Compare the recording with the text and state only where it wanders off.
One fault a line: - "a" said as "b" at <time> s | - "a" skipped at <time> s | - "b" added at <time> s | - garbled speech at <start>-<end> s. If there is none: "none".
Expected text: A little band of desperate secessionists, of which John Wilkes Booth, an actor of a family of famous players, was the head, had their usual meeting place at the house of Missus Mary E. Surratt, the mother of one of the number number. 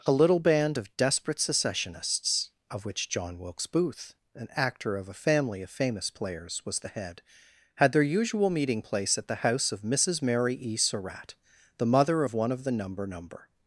none